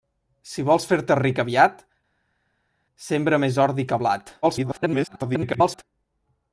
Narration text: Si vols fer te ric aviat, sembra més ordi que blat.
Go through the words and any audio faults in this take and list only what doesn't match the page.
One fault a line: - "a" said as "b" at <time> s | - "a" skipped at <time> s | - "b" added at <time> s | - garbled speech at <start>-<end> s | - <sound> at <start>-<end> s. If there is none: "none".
- garbled speech at 4.4-5.8 s